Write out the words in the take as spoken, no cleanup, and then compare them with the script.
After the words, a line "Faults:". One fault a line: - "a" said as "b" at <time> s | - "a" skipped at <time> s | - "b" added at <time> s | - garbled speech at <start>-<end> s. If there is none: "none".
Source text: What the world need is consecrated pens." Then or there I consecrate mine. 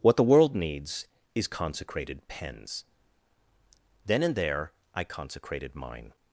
What the world needs is consecrated pens." Then and there I consecrated mine.
Faults:
- "need" said as "needs" at 0.6 s
- "or" said as "and" at 4.2 s
- "consecrate" said as "consecrated" at 5.0 s